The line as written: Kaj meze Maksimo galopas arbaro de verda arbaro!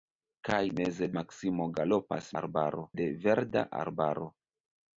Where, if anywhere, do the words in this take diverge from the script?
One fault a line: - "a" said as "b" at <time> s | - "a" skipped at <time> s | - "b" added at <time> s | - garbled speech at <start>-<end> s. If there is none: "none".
none